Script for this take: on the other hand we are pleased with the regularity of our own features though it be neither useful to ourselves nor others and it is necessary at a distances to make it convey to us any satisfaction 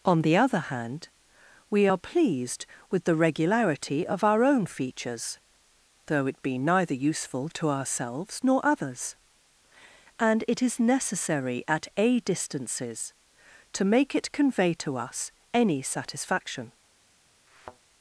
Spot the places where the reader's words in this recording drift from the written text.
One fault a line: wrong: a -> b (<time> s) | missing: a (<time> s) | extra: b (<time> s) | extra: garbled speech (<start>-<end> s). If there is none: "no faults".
no faults